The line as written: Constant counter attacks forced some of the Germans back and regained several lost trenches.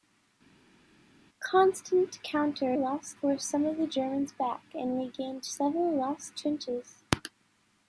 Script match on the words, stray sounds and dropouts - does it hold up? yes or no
no